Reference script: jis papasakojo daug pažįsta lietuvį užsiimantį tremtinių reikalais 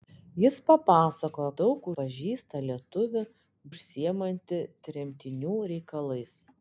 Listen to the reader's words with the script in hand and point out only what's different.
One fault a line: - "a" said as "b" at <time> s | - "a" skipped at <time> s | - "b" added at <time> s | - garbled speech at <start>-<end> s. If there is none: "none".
none